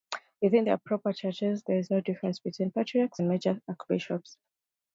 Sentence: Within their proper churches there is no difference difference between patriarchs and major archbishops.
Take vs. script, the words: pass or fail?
fail